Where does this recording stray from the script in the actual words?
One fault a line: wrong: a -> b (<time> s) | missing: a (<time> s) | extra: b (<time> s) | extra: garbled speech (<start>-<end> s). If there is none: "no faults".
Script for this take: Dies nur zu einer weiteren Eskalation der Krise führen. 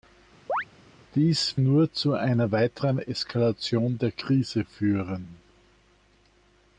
no faults